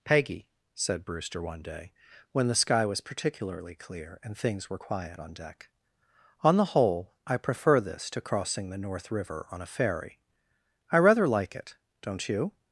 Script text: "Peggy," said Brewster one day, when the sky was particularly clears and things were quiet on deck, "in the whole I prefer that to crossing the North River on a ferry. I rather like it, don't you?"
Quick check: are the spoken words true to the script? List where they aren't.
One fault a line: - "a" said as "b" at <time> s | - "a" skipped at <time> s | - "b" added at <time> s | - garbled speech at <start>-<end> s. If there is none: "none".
- "clears" said as "clear" at 3.8 s
- "in" said as "on" at 6.4 s
- "that" said as "this" at 7.8 s